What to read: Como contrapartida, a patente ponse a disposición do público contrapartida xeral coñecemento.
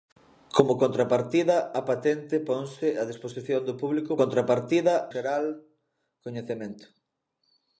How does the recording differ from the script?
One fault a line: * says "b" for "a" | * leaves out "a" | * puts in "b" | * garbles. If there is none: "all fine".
all fine